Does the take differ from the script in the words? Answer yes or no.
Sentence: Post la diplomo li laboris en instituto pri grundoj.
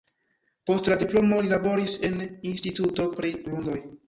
no